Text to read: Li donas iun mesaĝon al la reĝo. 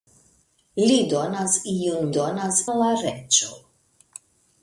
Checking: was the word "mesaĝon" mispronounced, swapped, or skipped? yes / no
yes